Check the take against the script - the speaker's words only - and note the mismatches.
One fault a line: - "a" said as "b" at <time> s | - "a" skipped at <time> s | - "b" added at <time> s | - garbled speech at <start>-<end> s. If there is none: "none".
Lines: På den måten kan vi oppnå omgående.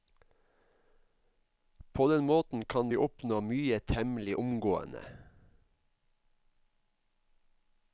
- "mye temmelig" added at 3.4 s